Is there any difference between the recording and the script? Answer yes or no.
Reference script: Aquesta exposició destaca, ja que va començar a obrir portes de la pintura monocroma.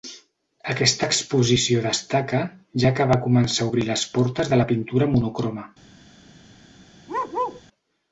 yes